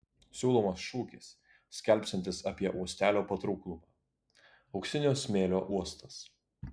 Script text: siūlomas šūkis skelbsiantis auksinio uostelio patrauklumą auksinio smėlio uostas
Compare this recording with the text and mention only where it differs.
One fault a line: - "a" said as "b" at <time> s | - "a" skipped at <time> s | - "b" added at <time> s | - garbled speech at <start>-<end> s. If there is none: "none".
- "auksinio" said as "apie" at 2.5 s